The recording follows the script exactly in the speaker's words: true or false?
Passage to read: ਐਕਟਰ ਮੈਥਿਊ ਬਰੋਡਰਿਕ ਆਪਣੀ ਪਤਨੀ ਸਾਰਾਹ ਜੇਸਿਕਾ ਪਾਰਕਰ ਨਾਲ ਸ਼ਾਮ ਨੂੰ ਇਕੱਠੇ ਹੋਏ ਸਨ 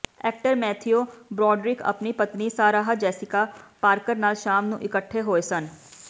true